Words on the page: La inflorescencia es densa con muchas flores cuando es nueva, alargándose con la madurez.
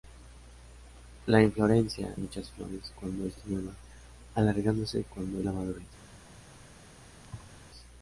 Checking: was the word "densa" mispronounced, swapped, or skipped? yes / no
yes